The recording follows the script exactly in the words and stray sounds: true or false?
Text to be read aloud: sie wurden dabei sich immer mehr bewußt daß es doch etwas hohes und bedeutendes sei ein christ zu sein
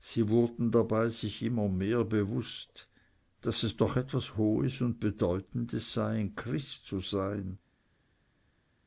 true